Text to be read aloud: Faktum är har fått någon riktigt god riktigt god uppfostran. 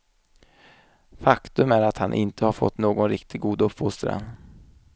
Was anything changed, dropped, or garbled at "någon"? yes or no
no